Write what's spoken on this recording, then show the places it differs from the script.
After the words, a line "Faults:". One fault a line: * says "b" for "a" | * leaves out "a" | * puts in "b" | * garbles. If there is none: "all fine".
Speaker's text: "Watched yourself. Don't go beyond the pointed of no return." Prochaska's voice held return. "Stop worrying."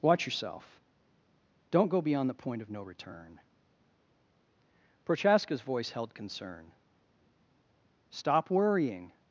"Watch yourself. Don't go beyond the point of no return." Prochaska's voice held concern. "Stop worrying."
Faults:
* says "Watch" for "Watched"
* says "point" for "pointed"
* says "concern" for "return"